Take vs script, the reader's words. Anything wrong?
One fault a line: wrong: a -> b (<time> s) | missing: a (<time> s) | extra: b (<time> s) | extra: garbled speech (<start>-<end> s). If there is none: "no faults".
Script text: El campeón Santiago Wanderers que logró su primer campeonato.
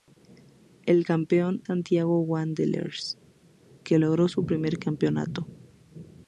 no faults